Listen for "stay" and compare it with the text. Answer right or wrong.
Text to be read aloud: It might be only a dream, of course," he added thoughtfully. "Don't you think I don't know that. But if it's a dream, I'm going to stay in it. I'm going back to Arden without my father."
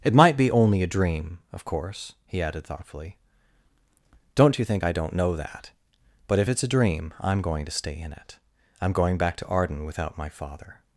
right